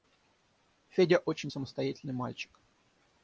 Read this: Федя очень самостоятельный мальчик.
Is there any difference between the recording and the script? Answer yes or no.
no